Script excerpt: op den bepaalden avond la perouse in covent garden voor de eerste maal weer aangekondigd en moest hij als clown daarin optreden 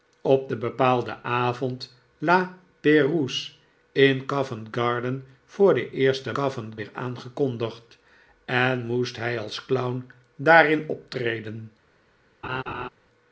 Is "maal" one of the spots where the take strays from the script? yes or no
yes